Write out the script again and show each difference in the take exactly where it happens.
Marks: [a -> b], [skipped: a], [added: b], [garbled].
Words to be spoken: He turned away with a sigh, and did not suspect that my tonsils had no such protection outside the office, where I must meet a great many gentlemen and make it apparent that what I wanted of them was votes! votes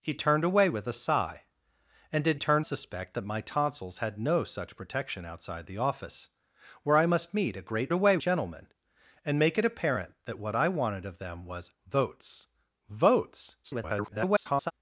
He turned away with a sigh, and did [not -> turned] suspect that my tonsils had no such protection outside the office, where I must meet a great [many -> away] gentlemen and make it apparent that what I wanted of them was votes! votes [garbled]